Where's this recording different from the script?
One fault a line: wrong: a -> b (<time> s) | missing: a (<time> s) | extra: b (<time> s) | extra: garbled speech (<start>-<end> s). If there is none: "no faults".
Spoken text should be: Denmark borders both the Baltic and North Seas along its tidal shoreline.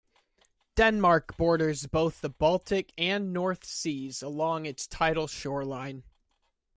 no faults